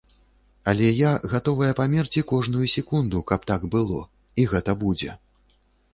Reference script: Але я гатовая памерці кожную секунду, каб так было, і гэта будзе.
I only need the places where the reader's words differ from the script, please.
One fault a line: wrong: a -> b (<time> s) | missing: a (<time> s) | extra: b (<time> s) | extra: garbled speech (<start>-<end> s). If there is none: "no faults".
no faults